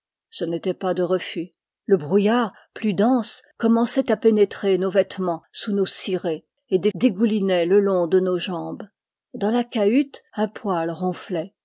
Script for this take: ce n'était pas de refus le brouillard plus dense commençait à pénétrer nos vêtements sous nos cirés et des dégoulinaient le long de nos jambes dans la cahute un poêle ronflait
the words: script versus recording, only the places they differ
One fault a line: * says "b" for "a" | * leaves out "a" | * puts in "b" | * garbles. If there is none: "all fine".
all fine